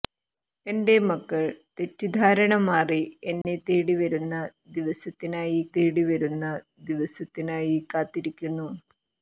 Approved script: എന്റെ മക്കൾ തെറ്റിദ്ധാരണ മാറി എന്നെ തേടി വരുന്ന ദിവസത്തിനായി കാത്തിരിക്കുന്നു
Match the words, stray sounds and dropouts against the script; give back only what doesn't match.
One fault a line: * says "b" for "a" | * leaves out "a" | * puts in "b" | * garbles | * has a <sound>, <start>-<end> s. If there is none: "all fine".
* has a dropout, 3.4-3.4 s
* puts in "തേടി വരുന്ന ദിവസത്തിനായി"